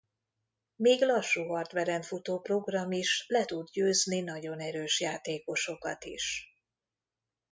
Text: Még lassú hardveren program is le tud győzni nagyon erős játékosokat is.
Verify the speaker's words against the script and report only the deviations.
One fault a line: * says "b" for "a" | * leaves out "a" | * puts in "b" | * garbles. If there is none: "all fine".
* puts in "futó"